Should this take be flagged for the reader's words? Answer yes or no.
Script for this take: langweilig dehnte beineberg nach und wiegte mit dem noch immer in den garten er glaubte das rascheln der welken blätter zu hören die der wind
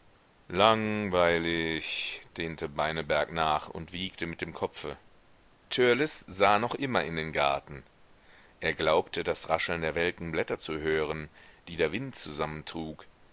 yes